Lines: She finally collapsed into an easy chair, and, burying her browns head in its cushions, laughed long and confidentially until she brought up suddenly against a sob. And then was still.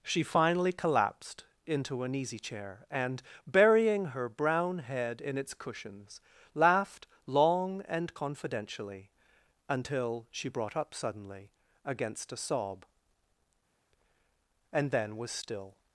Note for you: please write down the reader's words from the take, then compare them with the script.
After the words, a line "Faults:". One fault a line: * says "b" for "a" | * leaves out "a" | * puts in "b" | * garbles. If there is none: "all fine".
She finally collapsed into an easy chair, and, burying her brown head in its cushions, laughed long and confidentially until she brought up suddenly against a sob. And then was still.
Faults:
* says "brown" for "browns"